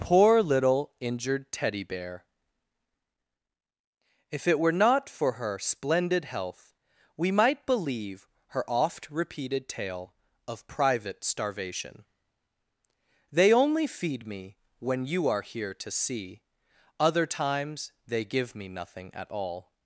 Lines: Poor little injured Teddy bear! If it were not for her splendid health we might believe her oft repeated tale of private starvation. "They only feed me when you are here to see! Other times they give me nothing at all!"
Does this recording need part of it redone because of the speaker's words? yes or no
no